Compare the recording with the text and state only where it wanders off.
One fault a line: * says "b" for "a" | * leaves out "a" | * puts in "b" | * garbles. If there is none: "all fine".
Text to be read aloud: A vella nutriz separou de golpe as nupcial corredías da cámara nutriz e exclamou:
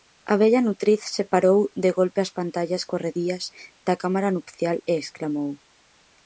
* says "pantallas" for "nupcial"
* says "nupcial" for "nutriz"